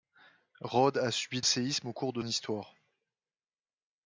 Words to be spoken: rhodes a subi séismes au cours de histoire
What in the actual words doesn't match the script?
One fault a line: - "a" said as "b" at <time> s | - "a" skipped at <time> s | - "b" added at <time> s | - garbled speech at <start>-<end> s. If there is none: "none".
none